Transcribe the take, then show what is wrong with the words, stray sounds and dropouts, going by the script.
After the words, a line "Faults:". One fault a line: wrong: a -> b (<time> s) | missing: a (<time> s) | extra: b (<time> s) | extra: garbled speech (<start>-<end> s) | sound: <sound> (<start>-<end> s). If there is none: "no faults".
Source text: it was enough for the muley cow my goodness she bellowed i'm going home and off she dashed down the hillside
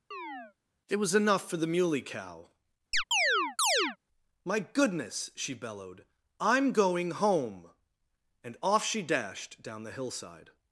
it was enough for the muley cow my goodness she bellowed i'm going home and off she dashed down the hillside
Faults:
sound: chirp (0.1-0.5 s)
sound: chirp (2.9-4.0 s)